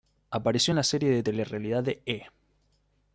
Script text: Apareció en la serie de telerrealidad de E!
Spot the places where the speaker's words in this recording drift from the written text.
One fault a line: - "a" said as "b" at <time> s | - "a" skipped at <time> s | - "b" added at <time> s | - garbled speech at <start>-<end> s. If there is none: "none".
none